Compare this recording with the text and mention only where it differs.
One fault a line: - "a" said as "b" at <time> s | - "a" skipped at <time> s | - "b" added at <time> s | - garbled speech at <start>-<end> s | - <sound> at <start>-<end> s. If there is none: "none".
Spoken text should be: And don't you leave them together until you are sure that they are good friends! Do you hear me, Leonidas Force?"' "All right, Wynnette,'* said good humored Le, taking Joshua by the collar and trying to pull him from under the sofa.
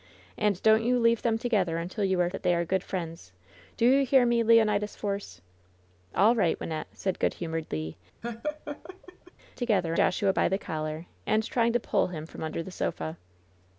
- "sure" skipped at 2.3 s
- laugh at 8.2-9.3 s
- "taking" said as "together" at 9.5 s